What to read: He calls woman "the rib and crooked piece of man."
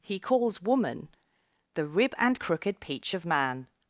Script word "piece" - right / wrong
wrong